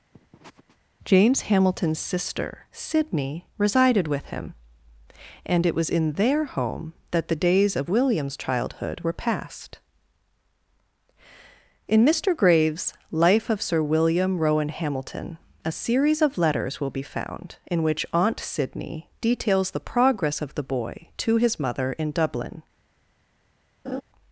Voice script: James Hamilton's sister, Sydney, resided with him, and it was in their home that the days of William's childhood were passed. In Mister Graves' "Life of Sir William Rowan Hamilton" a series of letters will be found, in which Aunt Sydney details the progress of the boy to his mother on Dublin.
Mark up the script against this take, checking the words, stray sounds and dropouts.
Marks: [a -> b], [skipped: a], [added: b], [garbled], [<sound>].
[sniff] James Hamilton's sister, Sydney, resided with him, and it was in their home that the days of William's childhood were passed. In Mister Graves' "Life of Sir William Rowan Hamilton" a series of letters will be found, in which Aunt Sydney details the progress of the boy to his mother [on -> in] Dublin. [laugh]